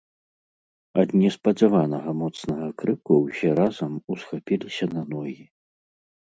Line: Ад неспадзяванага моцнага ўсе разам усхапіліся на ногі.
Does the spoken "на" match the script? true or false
true